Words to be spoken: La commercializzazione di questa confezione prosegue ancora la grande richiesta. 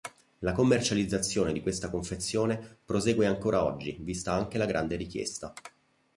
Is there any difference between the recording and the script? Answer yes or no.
yes